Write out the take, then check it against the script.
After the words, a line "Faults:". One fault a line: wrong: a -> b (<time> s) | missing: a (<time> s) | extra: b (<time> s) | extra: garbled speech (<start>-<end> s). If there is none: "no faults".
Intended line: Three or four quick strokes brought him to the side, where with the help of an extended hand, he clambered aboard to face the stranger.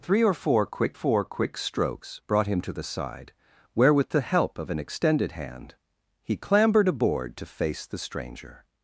Three or four quick four quick strokes brought him to the side, where with the help of an extended hand, he clambered aboard to face the stranger.
Faults:
extra: four quick (0.9 s)